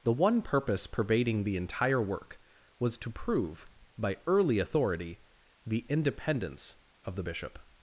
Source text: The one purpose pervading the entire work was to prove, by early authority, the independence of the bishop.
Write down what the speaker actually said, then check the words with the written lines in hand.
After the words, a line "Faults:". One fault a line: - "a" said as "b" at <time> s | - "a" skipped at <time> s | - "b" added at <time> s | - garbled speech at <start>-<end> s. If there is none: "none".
The one purpose pervading the entire work was to prove, by early authority, the independence of the bishop.
Faults:
none